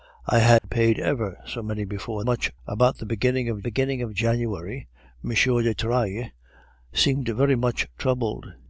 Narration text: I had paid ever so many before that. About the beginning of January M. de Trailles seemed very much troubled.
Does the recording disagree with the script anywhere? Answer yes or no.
yes